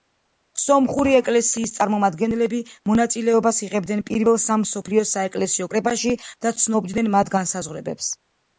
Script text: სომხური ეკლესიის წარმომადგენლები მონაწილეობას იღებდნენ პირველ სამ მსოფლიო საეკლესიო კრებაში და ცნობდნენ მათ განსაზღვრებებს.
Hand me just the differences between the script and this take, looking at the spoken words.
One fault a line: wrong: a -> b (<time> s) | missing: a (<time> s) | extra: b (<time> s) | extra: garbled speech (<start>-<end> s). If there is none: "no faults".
no faults